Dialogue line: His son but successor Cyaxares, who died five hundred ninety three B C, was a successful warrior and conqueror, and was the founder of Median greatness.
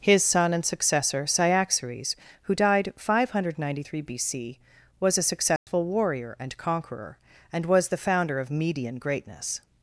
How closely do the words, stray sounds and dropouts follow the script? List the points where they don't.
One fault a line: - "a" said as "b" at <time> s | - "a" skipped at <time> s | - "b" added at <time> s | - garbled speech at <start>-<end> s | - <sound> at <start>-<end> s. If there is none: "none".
- "but" said as "and" at 0.5 s
- dropout at 5.6-5.7 s